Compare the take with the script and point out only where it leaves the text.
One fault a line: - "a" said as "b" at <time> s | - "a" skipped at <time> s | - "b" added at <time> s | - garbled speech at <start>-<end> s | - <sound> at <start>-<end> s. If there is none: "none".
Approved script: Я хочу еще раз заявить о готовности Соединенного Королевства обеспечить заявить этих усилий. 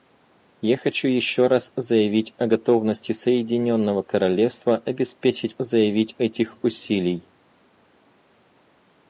none